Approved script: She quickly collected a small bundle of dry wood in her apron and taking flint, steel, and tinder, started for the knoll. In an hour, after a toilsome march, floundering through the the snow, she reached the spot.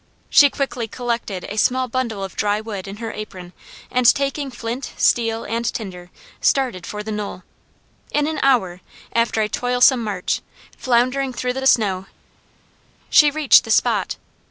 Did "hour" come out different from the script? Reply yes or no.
no